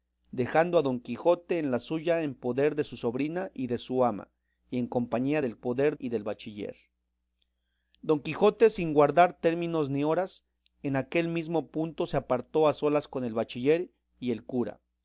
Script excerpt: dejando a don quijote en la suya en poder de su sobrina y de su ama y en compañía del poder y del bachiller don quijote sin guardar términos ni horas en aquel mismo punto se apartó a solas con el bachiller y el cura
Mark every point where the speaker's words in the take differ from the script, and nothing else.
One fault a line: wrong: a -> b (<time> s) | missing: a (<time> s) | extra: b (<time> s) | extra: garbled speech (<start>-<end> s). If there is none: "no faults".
no faults